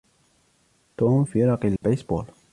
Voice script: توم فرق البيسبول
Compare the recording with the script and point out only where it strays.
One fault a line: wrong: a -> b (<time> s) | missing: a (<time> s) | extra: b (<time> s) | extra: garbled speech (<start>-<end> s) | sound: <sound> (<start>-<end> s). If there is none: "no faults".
sound: dropout (1.8-1.8 s)